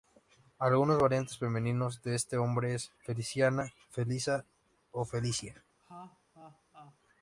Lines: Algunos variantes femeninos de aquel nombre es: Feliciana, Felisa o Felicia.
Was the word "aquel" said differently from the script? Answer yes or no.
yes